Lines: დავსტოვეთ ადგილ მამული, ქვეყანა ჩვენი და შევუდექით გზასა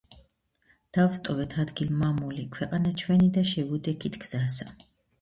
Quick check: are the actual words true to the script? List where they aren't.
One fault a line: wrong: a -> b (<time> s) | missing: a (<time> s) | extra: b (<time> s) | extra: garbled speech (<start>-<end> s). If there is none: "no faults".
no faults